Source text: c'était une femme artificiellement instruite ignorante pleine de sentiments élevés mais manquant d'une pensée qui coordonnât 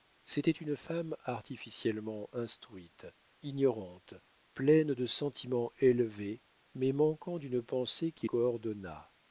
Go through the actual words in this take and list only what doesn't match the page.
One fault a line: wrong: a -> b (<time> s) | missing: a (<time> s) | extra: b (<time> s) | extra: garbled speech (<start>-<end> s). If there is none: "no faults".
no faults